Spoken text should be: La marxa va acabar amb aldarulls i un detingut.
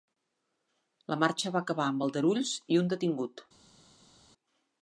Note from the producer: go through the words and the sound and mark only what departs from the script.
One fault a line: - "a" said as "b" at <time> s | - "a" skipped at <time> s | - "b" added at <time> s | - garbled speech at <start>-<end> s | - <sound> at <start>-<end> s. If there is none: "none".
none